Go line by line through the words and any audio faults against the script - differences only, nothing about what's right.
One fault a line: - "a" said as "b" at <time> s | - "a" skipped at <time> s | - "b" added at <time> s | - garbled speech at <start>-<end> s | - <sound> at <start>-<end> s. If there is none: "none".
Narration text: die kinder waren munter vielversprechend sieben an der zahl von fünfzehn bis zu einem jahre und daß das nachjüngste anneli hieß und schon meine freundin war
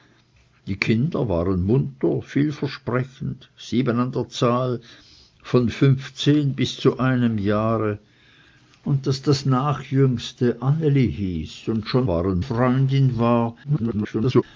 - "meine" said as "waren" at 12.1 s
- garbled speech at 13.6-14.4 s